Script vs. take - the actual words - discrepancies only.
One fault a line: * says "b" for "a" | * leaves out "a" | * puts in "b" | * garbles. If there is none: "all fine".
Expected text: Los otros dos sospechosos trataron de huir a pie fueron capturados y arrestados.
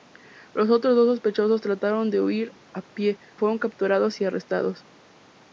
all fine